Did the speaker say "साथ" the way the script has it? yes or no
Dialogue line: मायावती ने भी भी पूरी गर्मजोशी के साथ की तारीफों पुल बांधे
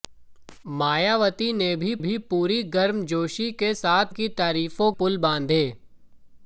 yes